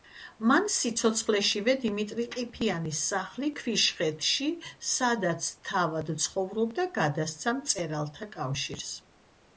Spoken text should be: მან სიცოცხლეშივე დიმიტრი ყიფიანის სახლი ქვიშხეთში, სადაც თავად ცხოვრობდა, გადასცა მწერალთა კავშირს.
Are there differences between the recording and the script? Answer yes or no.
no